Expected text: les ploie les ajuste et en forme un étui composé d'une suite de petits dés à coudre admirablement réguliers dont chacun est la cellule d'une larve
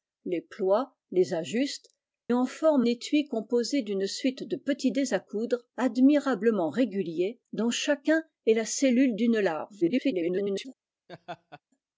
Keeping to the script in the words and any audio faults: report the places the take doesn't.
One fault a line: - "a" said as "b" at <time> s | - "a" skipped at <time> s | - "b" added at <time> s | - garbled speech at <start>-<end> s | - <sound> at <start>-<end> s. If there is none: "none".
- "et" skipped at 1.9 s
- "un" skipped at 2.8 s
- garbled speech at 9.8-10.7 s
- laugh at 11.1-11.6 s